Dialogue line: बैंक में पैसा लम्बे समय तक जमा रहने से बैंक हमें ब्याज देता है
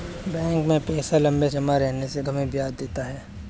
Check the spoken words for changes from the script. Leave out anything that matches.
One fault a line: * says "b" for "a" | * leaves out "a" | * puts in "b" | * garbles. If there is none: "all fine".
* leaves out "समय तक"
* leaves out "बैंक"